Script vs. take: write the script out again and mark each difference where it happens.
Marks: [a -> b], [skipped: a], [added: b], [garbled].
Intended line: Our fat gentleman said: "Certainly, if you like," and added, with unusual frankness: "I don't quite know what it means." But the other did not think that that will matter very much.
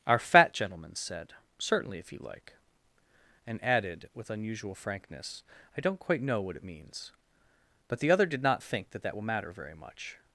Our fat gentleman said: "Certainly, if you like," and added, with unusual frankness: "I don't quite know what it means." But the other did not think that that will matter very much.